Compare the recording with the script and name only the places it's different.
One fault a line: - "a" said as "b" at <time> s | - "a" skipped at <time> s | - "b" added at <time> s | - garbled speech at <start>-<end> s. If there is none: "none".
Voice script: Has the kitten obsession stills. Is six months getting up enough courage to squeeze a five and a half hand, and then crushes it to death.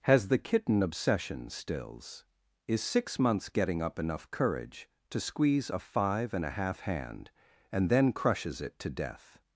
none